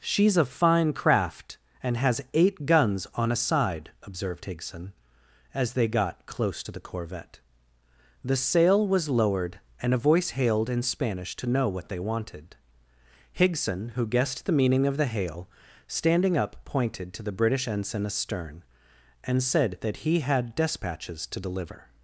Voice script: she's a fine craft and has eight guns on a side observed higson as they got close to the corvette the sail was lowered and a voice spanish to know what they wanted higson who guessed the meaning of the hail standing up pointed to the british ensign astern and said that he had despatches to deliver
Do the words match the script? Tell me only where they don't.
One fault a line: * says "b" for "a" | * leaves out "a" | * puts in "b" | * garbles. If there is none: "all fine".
* puts in "hailed in"